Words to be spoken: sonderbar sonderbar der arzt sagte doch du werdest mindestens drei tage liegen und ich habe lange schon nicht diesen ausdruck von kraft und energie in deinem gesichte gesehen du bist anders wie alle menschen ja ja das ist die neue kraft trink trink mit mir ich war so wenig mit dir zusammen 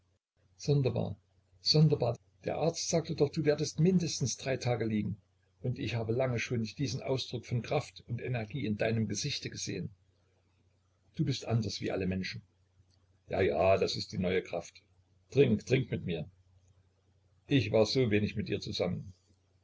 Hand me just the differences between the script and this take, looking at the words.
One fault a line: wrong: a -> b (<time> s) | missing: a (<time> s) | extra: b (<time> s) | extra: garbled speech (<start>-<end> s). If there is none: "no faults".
no faults